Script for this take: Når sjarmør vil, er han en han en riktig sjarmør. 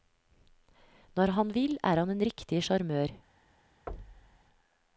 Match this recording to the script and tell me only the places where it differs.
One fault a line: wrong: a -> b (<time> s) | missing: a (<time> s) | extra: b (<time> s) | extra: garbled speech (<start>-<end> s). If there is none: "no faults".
wrong: sjarmør -> han (1.4 s)
missing: han en (2.2 s)